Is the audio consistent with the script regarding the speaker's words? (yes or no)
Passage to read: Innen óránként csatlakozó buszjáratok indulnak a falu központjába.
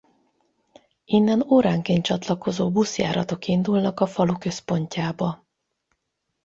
yes